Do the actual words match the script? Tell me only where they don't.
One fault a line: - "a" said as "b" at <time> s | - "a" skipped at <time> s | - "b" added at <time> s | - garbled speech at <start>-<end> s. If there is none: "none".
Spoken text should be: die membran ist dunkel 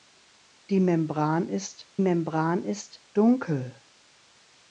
- "membran ist" added at 2.0 s